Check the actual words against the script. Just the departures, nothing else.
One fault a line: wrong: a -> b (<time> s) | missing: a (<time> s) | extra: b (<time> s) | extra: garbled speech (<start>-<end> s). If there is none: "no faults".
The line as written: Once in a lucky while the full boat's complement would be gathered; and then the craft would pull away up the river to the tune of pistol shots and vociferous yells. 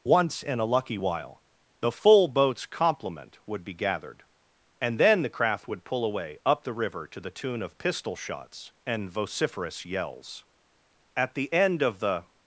extra: At the end of the (11.2 s)